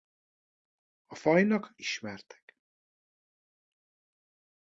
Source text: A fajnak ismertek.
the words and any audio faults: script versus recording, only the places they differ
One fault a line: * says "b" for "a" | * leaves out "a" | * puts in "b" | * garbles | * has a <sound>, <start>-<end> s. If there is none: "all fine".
all fine